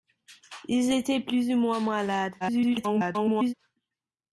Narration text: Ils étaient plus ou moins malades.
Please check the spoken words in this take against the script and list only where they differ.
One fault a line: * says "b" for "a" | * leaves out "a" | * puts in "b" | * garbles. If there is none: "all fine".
* garbles